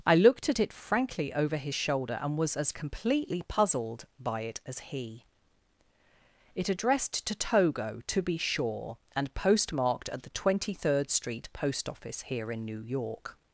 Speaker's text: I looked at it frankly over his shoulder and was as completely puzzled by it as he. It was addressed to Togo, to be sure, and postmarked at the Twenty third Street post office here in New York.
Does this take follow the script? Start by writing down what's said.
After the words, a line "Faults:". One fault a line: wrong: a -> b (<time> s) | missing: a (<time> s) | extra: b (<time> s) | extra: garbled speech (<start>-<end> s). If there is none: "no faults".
I looked at it frankly over his shoulder and was as completely puzzled by it as he. It addressed to Togo, to be sure, and postmarked at the Twenty third Street post office here in New York.
Faults:
missing: was (6.7 s)